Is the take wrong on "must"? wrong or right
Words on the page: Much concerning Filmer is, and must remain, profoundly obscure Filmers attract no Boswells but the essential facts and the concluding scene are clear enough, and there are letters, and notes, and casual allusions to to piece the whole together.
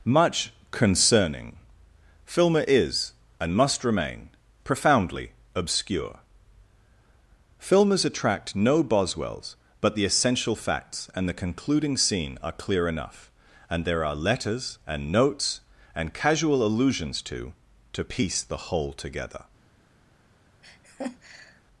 right